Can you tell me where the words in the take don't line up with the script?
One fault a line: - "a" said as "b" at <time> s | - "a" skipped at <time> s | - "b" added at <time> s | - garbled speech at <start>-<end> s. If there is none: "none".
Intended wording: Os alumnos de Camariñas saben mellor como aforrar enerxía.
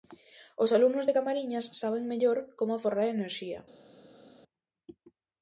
none